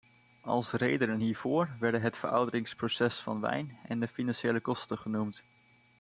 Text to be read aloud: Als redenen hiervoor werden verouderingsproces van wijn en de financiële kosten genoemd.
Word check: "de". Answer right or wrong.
right